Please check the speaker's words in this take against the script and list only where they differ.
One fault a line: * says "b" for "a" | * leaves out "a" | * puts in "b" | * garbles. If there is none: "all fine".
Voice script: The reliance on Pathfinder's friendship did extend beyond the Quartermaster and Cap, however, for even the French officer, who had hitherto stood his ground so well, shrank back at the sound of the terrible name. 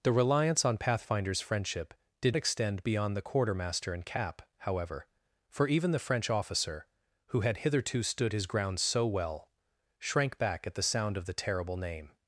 all fine